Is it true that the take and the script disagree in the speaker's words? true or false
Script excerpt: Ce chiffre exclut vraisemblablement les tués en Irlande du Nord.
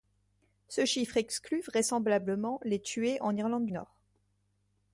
true